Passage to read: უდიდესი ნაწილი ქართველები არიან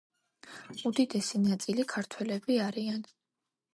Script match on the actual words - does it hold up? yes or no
yes